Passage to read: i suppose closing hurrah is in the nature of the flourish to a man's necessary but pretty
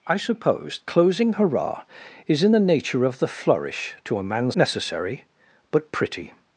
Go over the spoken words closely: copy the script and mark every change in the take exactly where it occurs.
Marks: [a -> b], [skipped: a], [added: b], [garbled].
i suppose closing hurrah is in the nature of the flourish to a man's necessary but pretty